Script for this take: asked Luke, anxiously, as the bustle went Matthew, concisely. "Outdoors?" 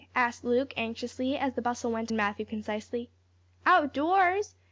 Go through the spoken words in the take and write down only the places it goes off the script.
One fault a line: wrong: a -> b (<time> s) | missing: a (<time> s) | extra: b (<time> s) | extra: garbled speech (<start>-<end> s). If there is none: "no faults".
no faults